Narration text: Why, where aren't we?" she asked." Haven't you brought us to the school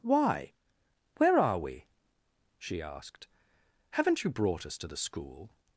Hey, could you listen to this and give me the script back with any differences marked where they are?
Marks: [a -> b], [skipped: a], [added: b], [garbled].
Why, where [aren't -> are] we?" she asked." Haven't you brought us to the school